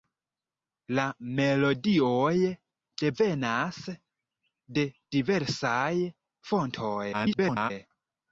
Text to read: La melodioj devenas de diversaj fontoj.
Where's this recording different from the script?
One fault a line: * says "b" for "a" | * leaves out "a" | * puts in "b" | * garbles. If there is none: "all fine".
* garbles